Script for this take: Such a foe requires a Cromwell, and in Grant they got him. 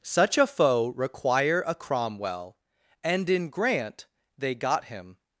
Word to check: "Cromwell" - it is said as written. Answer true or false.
true